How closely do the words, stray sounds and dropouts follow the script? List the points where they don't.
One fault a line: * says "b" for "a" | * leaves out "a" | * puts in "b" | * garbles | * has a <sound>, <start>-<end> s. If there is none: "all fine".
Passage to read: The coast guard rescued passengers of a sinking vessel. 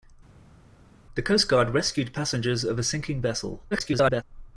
* garbles